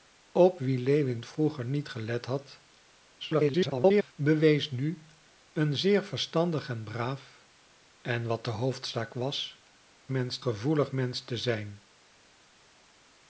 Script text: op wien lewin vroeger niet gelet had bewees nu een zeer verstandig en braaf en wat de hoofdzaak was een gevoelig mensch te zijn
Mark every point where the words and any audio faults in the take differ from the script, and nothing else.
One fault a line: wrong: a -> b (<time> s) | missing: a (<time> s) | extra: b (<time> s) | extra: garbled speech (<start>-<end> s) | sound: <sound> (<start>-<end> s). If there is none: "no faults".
extra: garbled speech (3.2-4.1 s)
wrong: een -> mensch (10.1 s)